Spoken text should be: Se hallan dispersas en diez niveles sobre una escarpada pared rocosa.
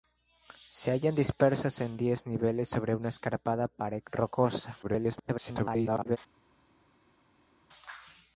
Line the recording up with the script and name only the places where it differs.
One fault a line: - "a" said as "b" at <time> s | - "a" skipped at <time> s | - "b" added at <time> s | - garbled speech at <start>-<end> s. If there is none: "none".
- garbled speech at 4.8-6.2 s